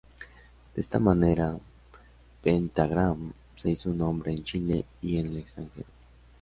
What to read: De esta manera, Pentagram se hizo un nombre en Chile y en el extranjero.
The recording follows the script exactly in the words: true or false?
true